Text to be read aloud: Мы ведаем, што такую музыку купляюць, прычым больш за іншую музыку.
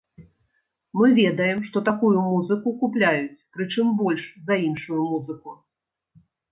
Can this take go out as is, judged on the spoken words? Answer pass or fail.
pass